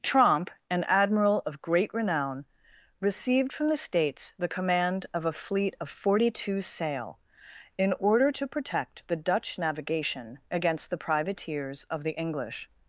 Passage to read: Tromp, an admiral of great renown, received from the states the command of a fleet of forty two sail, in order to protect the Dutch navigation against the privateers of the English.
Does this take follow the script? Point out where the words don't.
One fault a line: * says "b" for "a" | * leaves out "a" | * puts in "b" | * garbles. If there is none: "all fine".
all fine